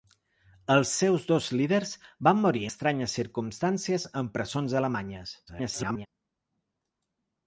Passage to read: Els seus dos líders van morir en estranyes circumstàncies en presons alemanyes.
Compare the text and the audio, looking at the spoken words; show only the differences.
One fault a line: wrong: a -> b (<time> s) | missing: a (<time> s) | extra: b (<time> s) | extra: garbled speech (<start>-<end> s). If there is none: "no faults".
missing: en (2.6 s)
extra: garbled speech (5.5-6.1 s)